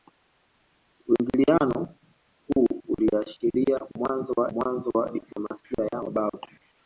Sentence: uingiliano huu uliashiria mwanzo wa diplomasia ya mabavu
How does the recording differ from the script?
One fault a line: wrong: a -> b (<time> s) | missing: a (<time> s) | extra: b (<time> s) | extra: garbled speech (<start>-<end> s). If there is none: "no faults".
extra: mwanzo wa (4.5 s)